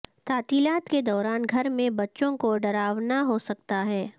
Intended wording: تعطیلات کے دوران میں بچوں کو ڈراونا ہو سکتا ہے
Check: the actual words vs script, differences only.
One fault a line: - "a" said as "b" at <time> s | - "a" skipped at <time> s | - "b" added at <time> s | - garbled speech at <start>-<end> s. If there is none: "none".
- "گھر" added at 1.5 s